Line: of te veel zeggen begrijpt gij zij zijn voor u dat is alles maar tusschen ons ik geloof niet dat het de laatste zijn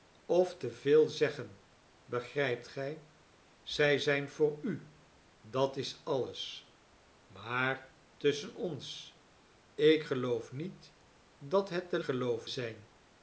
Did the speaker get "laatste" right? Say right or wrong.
wrong